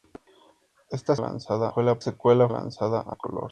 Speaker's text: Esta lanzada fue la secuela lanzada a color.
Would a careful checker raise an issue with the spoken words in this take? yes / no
no